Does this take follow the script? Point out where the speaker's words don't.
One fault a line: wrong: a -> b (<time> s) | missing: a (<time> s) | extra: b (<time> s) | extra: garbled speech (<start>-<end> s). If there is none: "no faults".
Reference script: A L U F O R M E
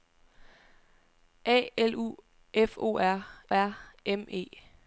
extra: R (3.5 s)